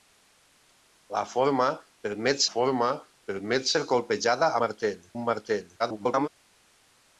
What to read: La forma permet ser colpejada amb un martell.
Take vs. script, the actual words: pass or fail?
fail